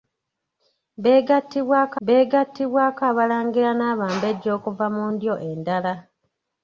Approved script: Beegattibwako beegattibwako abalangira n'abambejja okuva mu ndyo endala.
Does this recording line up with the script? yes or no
yes